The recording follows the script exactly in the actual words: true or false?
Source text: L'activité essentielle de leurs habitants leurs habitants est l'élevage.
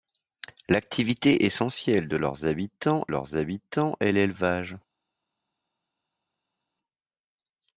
true